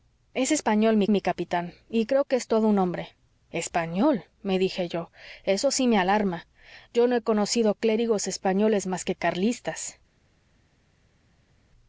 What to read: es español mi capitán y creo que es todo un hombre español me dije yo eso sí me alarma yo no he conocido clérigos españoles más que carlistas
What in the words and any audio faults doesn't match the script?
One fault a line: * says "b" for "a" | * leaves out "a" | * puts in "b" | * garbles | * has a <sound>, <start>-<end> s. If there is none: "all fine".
* puts in "mi"